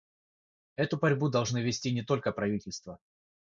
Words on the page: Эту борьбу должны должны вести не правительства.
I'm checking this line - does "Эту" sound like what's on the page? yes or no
yes